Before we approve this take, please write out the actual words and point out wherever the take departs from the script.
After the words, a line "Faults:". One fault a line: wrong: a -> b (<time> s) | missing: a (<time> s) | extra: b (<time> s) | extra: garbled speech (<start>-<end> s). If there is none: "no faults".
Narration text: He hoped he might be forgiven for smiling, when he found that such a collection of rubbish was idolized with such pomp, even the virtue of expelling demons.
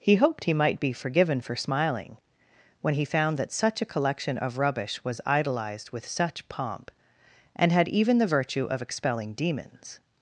He hoped he might be forgiven for smiling, when he found that such a collection of rubbish was idolized with such pomp, and had even the virtue of expelling demons.
Faults:
extra: and had (7.6 s)